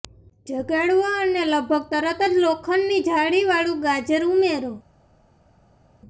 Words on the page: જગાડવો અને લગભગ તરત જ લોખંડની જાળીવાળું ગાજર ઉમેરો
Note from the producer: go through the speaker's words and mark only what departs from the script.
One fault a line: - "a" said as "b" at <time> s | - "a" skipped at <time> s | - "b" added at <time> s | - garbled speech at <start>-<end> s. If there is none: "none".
none